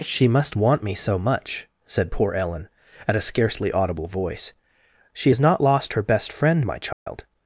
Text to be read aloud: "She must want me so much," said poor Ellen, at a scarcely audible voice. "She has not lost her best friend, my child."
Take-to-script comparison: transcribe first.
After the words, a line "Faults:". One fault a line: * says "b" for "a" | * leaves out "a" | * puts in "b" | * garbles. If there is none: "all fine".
"She must want me so much," said poor Ellen, at a scarcely audible voice. "She has not lost her best friend, my child."
Faults:
all fine